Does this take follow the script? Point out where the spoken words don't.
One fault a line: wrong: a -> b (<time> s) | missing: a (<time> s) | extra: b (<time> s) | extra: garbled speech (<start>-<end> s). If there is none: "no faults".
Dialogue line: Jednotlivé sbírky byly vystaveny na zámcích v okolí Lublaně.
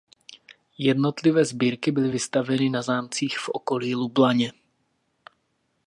no faults